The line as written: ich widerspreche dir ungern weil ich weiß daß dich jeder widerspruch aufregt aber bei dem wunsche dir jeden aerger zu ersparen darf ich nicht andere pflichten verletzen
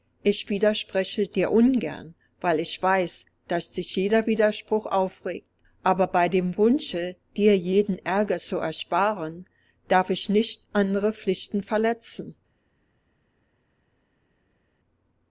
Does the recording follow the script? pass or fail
pass